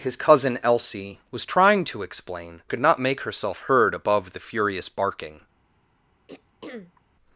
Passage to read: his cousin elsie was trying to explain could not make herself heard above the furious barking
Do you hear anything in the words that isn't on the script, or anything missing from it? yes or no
no